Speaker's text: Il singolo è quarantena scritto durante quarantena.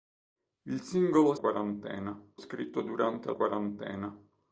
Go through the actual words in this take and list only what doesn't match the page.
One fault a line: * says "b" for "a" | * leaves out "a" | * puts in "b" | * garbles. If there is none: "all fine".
all fine